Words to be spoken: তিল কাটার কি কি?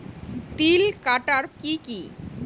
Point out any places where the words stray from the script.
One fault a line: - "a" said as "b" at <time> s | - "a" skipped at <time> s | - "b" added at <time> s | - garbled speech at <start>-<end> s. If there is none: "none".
none